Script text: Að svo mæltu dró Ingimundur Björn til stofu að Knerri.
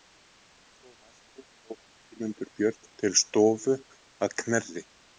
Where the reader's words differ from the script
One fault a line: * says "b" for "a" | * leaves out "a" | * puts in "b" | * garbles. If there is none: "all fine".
all fine